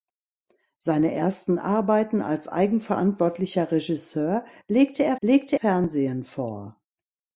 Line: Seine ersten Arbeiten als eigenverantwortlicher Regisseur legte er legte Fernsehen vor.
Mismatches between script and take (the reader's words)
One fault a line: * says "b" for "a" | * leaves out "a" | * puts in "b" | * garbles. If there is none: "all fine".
all fine